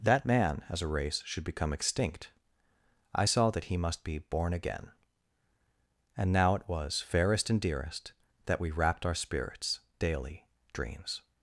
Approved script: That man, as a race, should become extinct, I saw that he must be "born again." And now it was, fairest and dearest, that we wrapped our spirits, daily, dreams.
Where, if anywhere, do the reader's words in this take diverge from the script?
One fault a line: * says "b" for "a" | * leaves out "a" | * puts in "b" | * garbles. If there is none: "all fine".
all fine